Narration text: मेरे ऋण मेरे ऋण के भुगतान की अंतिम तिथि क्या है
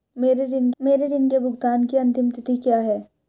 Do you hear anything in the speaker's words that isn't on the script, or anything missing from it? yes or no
no